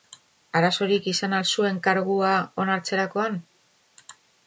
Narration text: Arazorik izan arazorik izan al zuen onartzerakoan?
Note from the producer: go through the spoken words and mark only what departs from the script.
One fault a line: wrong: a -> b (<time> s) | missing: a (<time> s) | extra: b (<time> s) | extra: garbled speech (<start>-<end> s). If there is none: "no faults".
missing: arazorik izan (1.4 s)
extra: kargua (1.9 s)